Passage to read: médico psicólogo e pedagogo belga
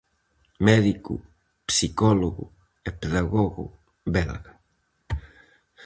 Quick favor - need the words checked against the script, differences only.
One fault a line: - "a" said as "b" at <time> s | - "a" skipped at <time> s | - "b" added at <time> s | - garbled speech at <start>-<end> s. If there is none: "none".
none